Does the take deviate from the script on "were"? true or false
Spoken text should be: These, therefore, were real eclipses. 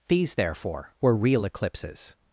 false